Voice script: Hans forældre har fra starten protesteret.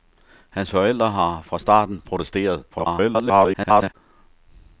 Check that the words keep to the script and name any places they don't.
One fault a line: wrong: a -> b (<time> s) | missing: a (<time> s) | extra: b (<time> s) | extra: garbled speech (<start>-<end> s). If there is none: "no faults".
extra: garbled speech (2.7-3.9 s)